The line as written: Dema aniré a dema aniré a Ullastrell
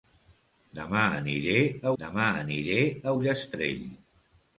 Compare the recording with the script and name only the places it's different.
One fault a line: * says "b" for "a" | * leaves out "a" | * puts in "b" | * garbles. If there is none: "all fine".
all fine